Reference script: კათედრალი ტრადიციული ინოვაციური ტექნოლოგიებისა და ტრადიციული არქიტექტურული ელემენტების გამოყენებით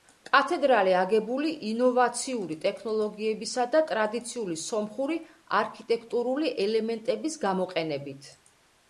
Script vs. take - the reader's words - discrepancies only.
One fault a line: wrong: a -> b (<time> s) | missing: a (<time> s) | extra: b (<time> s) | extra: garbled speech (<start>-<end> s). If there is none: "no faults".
wrong: ტრადიციული -> აგებული (1.0 s)
extra: სომხური (4.6 s)